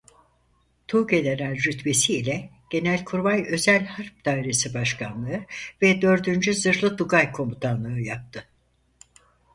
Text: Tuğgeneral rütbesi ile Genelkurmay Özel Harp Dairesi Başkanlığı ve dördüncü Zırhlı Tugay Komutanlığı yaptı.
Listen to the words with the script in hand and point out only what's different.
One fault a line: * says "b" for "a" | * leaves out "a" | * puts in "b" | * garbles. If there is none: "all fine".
all fine